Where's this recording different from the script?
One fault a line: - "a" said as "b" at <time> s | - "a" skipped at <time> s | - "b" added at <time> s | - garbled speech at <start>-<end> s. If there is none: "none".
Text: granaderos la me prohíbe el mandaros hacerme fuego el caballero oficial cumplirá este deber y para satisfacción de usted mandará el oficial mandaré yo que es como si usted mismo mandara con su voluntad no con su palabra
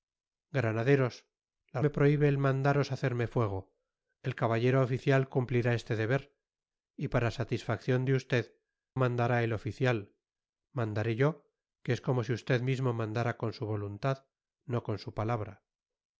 none